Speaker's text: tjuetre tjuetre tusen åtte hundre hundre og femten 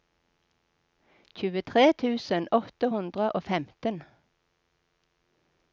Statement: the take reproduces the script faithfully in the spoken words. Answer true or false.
false